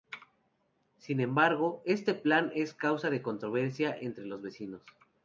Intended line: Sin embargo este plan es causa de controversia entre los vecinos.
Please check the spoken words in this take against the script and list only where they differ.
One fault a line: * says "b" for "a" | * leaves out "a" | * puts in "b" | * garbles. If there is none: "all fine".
all fine